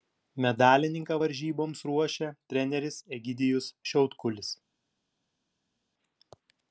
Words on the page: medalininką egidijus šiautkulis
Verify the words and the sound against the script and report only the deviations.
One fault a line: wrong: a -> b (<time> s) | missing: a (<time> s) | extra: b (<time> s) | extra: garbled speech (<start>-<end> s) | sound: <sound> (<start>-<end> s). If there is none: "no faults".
extra: varžyboms ruošia treneris (1.2 s)